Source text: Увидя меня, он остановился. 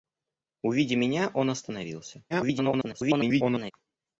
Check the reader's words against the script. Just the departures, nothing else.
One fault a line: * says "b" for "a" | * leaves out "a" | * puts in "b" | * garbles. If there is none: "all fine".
* garbles